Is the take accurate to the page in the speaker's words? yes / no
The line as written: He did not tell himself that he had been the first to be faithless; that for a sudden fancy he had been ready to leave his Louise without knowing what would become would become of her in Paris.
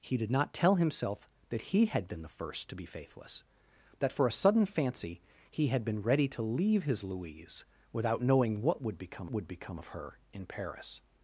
yes